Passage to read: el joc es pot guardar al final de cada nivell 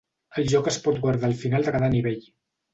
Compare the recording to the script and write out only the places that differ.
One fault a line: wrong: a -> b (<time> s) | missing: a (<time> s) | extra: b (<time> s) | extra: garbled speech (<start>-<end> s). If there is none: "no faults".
no faults